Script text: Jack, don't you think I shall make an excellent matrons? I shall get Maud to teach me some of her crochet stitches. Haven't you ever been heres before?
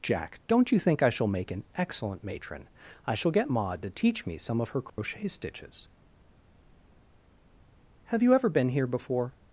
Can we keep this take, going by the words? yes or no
no